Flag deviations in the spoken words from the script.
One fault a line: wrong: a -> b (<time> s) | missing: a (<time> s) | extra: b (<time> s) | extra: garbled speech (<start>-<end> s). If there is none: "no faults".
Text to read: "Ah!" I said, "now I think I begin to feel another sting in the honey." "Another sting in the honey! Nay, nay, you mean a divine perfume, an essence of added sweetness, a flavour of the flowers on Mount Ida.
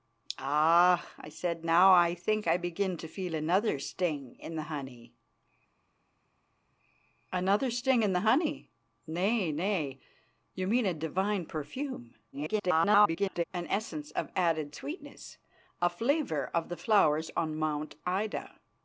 extra: garbled speech (12.3-13.4 s)